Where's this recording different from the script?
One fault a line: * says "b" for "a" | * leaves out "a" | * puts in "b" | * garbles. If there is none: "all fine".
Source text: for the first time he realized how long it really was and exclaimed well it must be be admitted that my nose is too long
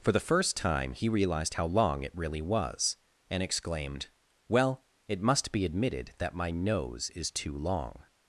* leaves out "be"